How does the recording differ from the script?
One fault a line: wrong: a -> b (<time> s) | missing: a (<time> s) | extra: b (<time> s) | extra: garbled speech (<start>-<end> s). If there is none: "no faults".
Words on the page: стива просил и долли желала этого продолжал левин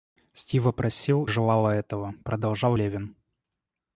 missing: и долли (1.2 s)